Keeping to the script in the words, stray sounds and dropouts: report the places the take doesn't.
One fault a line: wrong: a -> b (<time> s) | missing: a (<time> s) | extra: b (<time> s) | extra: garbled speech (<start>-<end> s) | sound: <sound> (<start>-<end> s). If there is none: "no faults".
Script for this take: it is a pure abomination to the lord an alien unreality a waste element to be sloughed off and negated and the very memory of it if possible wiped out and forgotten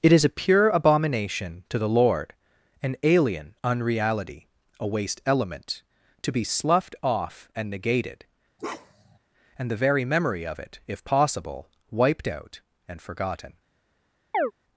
sound: bark (8.6-9.2 s)
sound: chirp (14.3-14.5 s)